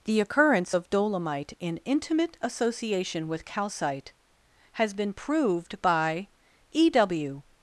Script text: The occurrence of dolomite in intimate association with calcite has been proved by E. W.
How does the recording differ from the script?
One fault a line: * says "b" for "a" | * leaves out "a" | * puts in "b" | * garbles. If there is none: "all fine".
all fine